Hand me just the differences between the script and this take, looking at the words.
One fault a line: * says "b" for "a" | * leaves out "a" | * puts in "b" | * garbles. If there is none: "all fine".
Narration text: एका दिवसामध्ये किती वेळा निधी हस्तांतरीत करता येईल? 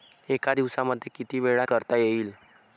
* leaves out "निधी हस्तांतरीत"